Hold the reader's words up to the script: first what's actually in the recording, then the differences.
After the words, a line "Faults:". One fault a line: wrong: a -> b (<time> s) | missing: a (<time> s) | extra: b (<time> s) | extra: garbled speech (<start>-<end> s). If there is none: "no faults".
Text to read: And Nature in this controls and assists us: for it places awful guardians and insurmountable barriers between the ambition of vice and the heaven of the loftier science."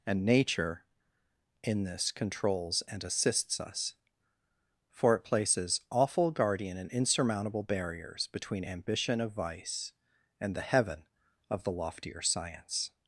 And Nature in this controls and assists us: for it places awful guardian and insurmountable barriers between ambition of vice and the heaven of the loftier science."
Faults:
wrong: guardians -> guardian (6.3 s)
missing: the (8.7 s)